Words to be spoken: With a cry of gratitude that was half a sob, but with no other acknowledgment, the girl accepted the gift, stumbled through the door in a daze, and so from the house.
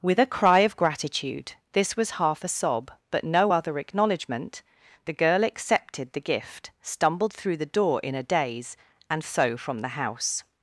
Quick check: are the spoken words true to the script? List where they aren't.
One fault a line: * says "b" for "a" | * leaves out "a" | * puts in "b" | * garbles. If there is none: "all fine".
* says "this" for "that"
* leaves out "with"